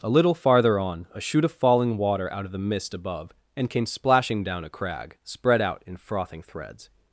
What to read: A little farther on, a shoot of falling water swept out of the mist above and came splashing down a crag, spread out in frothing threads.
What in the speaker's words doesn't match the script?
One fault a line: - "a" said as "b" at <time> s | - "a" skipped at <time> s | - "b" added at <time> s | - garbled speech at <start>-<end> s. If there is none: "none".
- "swept" skipped at 2.3 s